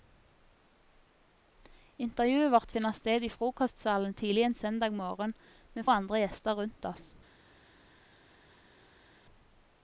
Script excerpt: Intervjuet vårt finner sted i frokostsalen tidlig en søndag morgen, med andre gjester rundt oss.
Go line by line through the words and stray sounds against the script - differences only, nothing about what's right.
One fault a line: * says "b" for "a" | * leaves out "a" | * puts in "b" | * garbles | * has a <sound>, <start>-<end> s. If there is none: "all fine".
all fine